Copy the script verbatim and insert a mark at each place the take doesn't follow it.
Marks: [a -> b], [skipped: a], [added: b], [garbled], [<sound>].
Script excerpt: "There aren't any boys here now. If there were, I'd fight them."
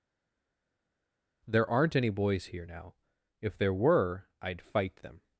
"There aren't any boys here now. If there were, I'd fight them."